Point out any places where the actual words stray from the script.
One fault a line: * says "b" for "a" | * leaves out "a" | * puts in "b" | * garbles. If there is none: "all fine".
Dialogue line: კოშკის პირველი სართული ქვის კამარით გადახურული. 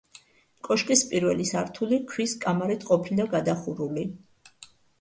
* puts in "ყოფილა"